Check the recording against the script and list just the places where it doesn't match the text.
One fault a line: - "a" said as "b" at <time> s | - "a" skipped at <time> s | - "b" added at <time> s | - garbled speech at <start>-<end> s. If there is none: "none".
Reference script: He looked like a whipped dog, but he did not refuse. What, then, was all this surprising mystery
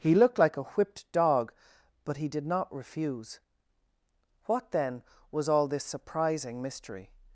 none